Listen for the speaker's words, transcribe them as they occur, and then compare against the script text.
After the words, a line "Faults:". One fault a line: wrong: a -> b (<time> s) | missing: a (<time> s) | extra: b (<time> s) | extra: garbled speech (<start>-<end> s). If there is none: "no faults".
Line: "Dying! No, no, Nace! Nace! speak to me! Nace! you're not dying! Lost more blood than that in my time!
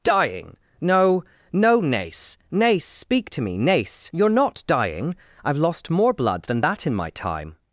"Dying! No, no, Nace! Nace! speak to me! Nace! you're not dying! I've lost more blood than that in my time!
Faults:
extra: I've (5.4 s)